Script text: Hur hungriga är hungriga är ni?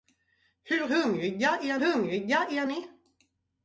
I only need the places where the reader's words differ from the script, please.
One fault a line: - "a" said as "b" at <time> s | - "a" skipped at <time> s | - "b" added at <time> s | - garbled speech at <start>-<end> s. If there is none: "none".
none